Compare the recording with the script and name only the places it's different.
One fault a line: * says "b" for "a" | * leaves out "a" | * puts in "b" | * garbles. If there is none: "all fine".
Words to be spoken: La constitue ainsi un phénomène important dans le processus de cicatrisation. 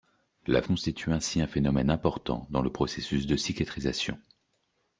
all fine